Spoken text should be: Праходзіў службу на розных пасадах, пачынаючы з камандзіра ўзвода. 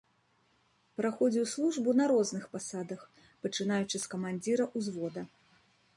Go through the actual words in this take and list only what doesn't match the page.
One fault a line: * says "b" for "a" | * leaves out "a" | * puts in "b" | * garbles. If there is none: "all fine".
all fine